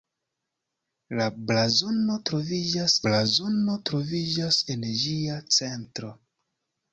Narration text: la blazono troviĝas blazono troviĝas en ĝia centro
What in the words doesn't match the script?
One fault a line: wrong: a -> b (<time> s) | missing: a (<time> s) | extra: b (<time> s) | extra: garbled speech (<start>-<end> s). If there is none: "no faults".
no faults